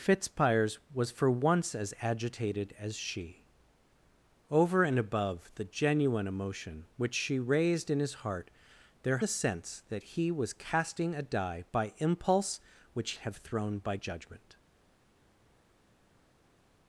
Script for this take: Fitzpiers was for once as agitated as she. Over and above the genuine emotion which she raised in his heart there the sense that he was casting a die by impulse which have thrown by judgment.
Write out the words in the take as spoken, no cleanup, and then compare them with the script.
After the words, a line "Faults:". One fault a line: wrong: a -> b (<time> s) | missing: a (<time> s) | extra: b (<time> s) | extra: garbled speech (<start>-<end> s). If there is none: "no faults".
Fitzpiers was for once as agitated as she. Over and above the genuine emotion which she raised in his heart there the sense that he was casting a die by impulse which have thrown by judgment.
Faults:
no faults